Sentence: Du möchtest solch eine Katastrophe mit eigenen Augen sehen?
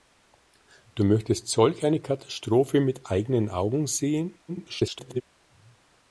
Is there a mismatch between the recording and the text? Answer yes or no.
yes